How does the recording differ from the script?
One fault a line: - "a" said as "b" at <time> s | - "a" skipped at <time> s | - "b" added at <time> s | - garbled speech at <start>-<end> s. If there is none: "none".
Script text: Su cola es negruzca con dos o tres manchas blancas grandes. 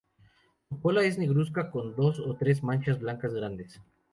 none